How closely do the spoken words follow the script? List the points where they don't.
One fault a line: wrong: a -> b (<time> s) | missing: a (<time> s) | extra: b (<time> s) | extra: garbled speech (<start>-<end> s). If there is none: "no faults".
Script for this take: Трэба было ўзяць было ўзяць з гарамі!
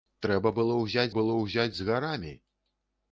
no faults